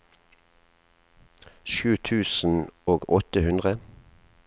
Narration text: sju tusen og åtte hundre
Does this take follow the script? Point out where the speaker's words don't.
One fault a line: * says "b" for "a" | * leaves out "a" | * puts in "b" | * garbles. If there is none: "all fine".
all fine